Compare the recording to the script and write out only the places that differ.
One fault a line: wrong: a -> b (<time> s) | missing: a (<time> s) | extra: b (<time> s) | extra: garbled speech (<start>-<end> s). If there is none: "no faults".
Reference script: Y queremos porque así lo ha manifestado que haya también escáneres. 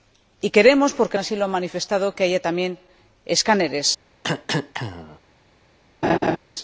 no faults